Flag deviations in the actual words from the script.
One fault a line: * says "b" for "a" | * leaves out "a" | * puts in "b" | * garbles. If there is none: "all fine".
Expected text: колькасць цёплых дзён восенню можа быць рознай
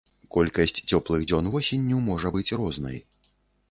all fine